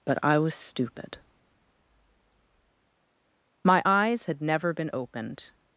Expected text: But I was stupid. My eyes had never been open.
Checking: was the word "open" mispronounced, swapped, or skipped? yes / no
yes